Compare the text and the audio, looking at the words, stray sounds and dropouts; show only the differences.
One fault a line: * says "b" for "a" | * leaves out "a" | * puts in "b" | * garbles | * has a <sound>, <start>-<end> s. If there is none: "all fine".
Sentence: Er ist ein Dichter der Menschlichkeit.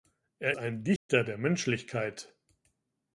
* leaves out "ist"
* has a dropout, 1.0-1.1 s